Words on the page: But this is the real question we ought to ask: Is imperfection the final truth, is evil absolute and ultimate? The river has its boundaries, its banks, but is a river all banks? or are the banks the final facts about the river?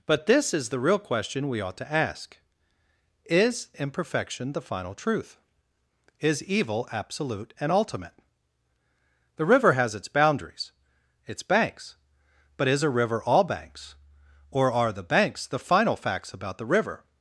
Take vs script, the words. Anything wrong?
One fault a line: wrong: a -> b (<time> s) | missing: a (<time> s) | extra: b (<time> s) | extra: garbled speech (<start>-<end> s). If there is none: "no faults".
no faults